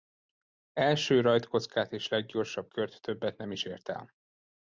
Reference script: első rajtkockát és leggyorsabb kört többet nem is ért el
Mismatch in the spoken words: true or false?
false